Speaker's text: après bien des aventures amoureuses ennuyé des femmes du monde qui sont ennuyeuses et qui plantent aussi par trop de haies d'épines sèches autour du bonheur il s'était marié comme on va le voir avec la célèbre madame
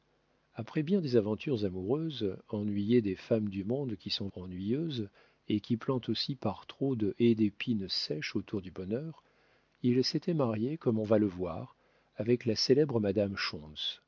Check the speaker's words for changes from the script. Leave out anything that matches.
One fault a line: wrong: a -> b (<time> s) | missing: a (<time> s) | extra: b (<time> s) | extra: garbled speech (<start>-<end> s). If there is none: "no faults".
no faults